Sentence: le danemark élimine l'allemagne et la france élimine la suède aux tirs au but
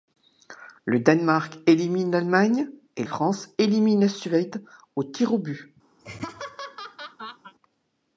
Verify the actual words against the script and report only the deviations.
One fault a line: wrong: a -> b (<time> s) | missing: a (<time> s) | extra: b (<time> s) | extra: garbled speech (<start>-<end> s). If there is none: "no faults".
missing: la (3.0 s)